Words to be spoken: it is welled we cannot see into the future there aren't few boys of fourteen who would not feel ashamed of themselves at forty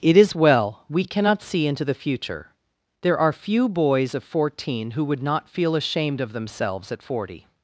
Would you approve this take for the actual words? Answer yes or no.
no